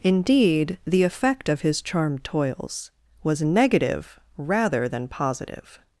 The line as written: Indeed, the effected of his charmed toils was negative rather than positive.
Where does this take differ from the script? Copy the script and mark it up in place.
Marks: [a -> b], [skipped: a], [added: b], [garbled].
Indeed, the [effected -> effect] of his charmed toils was negative rather than positive.